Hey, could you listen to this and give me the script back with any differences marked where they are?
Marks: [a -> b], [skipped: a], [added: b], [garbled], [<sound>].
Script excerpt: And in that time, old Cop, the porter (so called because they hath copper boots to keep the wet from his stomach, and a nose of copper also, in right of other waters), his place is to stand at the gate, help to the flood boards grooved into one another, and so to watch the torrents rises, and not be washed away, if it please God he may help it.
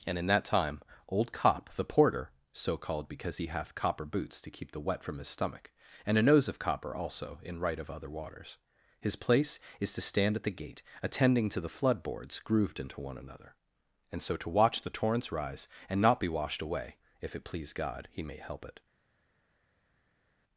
And in that time, old Cop, the porter (so called because [they -> he] hath copper boots to keep the wet from his stomach, and a nose of copper also, in right of other waters), his place is to stand at the gate, [help -> attending] to the flood boards grooved into one another, and so to watch the torrents [rises, -> rise] and not be washed away, if it please God he may help it.